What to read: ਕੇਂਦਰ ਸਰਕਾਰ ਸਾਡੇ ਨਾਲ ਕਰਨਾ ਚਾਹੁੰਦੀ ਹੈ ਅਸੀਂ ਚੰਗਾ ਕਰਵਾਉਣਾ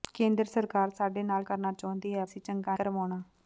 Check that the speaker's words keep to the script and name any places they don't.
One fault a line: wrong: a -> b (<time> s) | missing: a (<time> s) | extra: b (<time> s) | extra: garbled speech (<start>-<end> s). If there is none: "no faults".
no faults